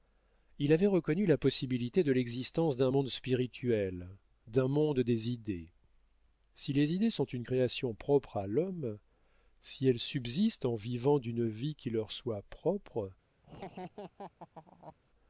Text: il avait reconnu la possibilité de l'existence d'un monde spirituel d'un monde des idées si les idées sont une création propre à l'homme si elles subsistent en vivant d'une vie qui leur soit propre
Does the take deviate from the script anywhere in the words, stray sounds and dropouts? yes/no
yes